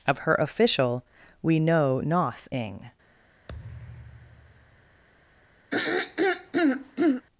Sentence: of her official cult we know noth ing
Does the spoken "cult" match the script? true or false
false